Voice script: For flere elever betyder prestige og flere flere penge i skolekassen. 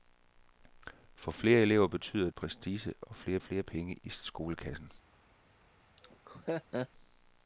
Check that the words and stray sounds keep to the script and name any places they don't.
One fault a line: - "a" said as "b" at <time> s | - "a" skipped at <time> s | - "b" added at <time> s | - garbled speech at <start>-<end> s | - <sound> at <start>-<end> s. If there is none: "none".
- laugh at 6.0-6.9 s